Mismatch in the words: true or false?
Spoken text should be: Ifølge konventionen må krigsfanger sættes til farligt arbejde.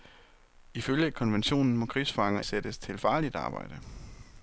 false